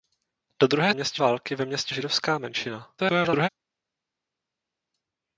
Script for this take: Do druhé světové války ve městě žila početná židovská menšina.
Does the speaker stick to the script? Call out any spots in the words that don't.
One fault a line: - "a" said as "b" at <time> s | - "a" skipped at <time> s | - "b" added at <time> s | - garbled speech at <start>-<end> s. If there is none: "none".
- "světové" said as "městě" at 0.9 s
- "žila početná" skipped at 1.9 s
- garbled speech at 3.0-3.5 s